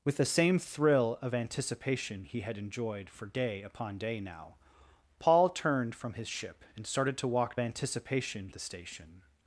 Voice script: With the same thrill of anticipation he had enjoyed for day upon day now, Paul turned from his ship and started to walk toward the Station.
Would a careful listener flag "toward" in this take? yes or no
yes